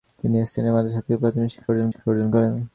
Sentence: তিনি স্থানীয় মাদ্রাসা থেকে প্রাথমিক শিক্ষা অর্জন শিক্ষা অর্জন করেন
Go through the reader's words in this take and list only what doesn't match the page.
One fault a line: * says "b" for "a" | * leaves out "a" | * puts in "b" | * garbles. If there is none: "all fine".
all fine